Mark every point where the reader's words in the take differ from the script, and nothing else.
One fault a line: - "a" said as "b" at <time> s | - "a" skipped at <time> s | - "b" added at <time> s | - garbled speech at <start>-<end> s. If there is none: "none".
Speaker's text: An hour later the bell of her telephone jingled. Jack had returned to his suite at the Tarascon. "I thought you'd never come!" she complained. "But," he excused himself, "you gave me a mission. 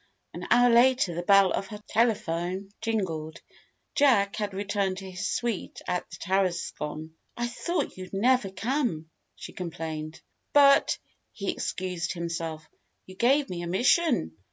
none